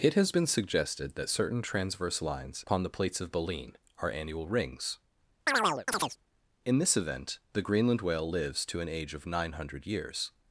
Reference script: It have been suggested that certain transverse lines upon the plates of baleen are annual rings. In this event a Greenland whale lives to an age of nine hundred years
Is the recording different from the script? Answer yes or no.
yes